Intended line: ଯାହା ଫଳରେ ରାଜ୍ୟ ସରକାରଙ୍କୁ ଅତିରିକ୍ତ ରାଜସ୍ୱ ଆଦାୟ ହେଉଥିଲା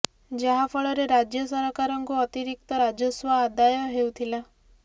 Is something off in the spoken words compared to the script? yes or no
no